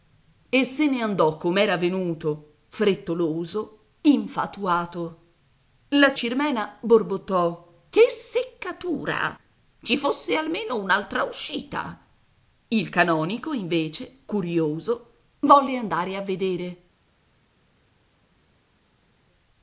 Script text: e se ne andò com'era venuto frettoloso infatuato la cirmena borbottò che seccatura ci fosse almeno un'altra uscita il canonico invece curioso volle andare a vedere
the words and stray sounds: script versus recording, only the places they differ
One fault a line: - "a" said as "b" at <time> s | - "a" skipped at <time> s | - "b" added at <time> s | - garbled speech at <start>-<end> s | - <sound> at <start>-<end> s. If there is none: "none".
none